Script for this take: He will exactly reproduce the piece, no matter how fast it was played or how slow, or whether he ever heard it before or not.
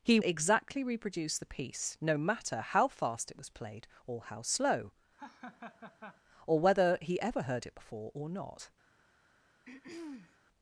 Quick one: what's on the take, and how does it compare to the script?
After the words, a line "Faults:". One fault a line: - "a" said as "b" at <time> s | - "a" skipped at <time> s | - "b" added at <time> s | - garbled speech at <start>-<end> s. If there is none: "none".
He exactly reproduce the piece, no matter how fast it was played or how slow, or whether he ever heard it before or not.
Faults:
- "will" skipped at 0.2 s